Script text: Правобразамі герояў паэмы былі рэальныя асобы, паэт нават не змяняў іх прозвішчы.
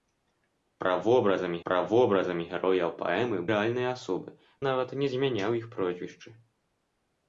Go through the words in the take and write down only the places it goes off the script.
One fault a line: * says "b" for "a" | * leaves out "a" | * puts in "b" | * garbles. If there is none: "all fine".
* puts in "правобразамі"
* leaves out "былі"
* leaves out "паэт"